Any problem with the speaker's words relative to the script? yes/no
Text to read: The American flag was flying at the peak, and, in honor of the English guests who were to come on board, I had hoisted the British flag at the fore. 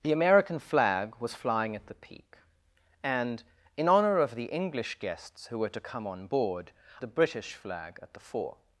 yes